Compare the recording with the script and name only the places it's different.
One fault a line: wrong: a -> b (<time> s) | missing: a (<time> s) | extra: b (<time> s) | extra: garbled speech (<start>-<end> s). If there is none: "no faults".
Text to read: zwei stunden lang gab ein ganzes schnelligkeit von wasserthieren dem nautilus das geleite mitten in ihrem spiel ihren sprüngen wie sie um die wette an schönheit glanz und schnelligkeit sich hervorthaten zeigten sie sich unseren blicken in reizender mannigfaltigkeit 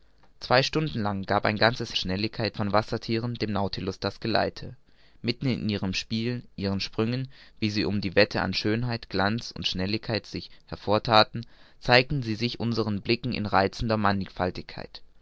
no faults